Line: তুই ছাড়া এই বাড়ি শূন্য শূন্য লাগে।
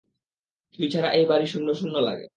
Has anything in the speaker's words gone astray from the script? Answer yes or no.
no